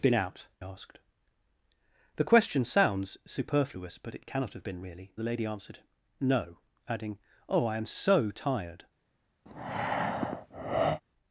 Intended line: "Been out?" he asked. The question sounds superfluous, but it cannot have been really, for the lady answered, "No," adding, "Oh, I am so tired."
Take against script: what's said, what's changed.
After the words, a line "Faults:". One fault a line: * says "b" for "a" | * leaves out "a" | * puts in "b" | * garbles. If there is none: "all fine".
"Been out?" asked. The question sounds superfluous, but it cannot have been really, the lady answered, "No," adding, "Oh, I am so tired."
Faults:
* leaves out "he"
* leaves out "for"